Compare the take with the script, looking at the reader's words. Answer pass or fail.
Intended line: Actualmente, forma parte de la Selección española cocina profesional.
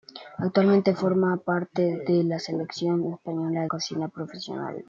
pass